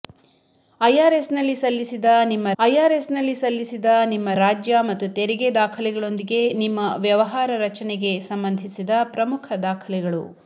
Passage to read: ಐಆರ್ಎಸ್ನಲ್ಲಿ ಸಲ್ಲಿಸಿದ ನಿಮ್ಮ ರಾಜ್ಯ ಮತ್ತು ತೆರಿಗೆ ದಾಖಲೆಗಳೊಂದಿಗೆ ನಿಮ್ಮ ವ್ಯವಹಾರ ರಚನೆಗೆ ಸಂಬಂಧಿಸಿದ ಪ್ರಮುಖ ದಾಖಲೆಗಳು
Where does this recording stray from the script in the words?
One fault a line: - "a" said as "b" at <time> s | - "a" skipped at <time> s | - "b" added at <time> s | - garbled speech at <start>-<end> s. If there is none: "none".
- "ಐಆರ್ಎಸ್ನಲ್ಲಿ ಸಲ್ಲಿಸಿದ ನಿಮ್ಮ" added at 2.6 s